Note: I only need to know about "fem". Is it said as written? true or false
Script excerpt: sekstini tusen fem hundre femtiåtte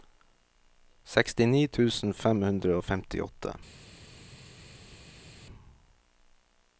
true